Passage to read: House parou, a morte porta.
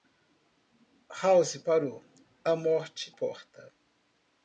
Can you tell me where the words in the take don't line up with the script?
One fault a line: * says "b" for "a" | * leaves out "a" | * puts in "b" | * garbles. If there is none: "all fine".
all fine